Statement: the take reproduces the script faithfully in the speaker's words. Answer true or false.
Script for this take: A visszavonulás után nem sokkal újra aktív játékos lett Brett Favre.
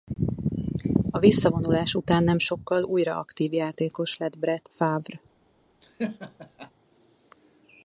true